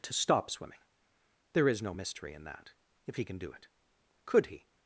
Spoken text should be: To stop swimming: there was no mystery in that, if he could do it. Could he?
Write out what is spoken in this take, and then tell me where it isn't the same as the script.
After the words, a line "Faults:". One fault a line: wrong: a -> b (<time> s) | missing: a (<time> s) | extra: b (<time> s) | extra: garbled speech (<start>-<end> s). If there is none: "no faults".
To stop swimming: there is no mystery in that, if he can do it. Could he?
Faults:
wrong: was -> is (1.7 s)
wrong: could -> can (3.2 s)